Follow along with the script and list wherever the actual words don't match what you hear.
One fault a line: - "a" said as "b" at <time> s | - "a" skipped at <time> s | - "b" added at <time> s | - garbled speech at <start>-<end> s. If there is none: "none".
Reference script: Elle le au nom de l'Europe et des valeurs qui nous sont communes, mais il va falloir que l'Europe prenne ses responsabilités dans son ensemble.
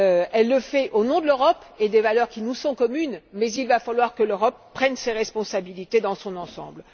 - "fait" added at 0.6 s